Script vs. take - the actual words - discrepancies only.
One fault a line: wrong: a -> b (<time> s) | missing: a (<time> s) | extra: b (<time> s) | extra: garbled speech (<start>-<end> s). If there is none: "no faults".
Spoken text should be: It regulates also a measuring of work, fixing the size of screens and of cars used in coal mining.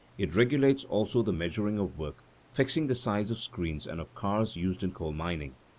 wrong: a -> the (1.2 s)